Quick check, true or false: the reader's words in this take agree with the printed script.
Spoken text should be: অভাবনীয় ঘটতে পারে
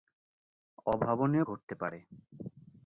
true